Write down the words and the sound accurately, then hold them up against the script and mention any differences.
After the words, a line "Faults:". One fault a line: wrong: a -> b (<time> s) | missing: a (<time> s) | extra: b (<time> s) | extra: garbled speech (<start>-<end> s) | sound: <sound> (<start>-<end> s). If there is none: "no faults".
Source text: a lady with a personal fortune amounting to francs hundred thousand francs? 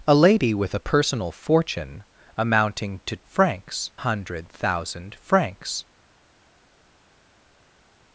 a lady with a personal fortune amounting to francs hundred thousand francs?
Faults:
no faults